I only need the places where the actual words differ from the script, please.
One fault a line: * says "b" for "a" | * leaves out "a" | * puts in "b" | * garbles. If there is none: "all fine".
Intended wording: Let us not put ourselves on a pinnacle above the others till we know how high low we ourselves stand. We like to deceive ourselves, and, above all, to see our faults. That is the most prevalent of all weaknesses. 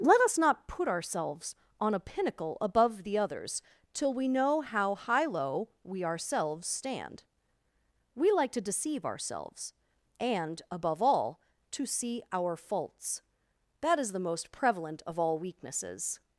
all fine